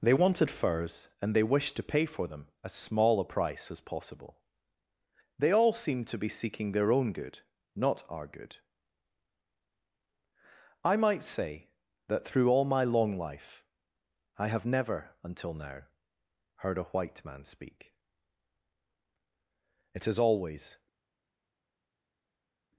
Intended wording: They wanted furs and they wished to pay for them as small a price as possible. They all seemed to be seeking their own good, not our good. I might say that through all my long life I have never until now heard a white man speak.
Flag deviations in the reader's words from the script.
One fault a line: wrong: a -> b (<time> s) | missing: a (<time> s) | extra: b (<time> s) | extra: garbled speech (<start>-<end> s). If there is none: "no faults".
extra: It has always (19.9 s)